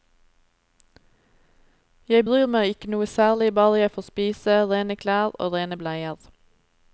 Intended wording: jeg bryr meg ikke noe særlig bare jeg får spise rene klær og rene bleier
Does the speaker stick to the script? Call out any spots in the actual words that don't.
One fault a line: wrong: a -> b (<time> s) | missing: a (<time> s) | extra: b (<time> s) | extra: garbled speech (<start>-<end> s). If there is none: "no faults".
no faults